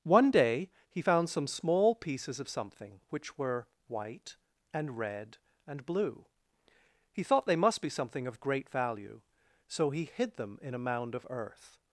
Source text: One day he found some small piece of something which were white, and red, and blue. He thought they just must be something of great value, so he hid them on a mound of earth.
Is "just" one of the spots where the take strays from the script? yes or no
yes